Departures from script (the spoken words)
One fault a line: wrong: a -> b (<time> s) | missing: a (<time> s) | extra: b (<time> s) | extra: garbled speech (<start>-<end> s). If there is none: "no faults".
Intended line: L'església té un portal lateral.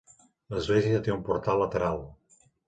no faults